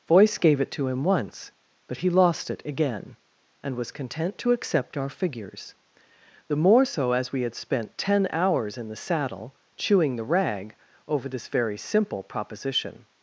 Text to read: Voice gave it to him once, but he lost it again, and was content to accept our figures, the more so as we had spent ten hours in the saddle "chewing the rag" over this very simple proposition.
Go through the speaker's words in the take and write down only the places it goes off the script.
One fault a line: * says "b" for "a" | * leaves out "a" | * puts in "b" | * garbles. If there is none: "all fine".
all fine